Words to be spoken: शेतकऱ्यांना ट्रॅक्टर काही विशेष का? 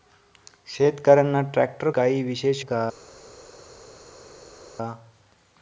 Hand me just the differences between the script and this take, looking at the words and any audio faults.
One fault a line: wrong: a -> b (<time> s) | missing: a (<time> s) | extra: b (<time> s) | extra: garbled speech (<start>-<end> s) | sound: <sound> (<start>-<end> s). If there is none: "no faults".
no faults